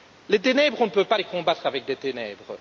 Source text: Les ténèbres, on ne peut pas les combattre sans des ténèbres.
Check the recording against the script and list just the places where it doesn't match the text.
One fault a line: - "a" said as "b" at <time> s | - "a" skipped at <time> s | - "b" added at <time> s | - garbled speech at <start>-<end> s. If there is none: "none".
- "sans" said as "avec" at 1.7 s